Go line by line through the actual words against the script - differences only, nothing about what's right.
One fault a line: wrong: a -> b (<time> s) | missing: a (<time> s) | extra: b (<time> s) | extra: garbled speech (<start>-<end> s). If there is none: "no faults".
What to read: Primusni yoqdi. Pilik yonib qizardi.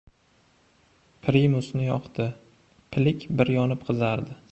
extra: bir (3.4 s)